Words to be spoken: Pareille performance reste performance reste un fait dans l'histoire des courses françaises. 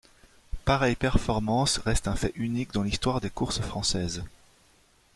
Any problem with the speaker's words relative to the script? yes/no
yes